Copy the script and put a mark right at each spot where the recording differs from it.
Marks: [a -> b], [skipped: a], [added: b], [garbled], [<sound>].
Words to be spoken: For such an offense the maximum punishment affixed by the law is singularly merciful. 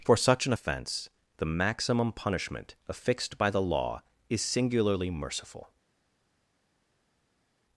For such an offense the maximum punishment affixed by the law is singularly merciful.